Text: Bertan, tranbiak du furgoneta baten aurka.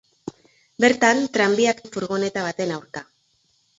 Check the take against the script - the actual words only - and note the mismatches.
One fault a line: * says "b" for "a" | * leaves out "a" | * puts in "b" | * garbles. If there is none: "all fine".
all fine